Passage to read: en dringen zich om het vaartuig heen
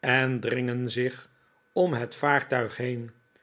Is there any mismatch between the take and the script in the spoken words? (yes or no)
no